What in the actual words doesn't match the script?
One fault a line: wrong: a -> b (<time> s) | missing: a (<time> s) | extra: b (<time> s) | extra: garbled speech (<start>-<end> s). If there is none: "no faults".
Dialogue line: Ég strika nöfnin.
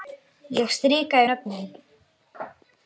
no faults